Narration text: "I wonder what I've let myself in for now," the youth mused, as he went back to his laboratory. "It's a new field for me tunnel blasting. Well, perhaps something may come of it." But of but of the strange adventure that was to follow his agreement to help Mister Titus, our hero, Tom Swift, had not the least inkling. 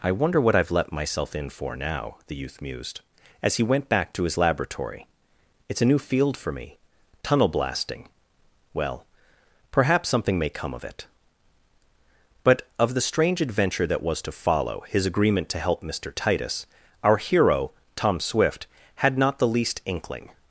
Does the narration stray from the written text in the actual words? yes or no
yes